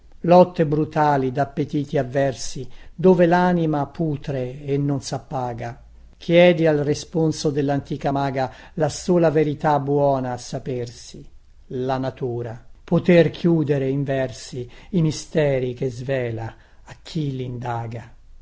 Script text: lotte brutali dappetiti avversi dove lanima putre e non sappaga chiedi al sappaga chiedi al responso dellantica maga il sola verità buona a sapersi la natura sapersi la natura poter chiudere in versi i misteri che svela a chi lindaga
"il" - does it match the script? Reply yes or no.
no